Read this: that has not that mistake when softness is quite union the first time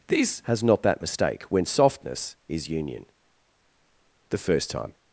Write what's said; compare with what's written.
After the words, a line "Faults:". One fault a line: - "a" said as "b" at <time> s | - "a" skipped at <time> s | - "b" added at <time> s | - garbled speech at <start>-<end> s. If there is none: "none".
this has not that mistake when softness is union the first time
Faults:
- "that" said as "this" at 0.1 s
- "quite" skipped at 2.7 s